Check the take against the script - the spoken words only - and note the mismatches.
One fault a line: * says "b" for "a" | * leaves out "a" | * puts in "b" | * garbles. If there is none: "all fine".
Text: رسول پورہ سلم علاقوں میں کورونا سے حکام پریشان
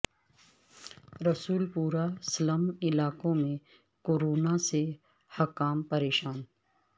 all fine